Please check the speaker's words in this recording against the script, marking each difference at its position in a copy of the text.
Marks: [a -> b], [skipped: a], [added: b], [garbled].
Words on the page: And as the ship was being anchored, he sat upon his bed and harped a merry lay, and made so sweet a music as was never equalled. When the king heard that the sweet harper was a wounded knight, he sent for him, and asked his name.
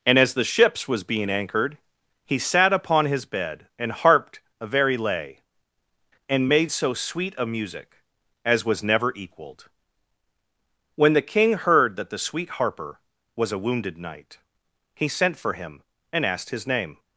And as the [ship -> ships] was being anchored, he sat upon his bed and harped a [merry -> very] lay, and made so sweet a music as was never equalled. When the king heard that the sweet harper was a wounded knight, he sent for him, and asked his name.